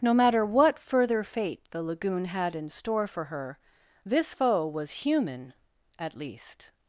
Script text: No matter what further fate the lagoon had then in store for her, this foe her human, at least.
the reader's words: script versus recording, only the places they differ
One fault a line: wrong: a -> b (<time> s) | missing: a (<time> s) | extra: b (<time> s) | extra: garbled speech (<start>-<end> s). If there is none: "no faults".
missing: then (2.6 s)
wrong: her -> was (4.7 s)